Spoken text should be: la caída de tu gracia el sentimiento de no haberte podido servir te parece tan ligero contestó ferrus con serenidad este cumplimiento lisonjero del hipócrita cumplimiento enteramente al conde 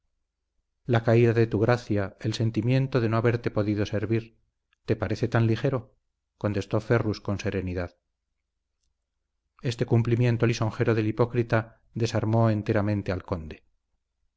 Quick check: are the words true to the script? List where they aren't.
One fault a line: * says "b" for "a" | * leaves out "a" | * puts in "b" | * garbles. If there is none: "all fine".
* says "desarmó" for "cumplimiento"